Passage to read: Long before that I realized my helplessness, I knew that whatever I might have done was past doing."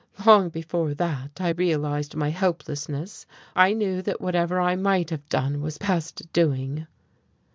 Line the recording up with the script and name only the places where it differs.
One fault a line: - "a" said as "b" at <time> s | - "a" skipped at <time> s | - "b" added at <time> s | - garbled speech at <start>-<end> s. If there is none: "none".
none